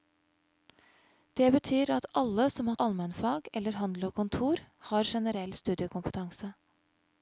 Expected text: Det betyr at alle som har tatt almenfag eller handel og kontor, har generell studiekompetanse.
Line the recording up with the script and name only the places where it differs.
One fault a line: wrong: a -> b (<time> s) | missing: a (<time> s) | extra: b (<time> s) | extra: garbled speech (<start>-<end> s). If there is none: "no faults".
missing: tatt (2.8 s)